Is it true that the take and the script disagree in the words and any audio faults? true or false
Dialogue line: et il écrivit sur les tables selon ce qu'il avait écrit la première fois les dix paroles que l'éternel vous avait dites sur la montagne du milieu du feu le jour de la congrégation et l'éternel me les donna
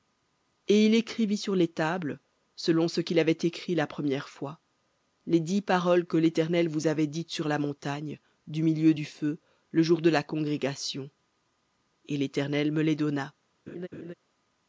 true